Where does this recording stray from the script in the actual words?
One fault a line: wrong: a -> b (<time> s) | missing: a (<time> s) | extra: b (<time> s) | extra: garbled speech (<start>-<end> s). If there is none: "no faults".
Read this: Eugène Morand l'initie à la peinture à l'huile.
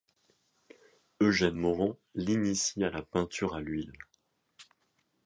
no faults